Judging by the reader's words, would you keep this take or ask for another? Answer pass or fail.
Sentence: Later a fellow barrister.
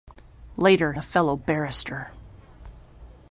pass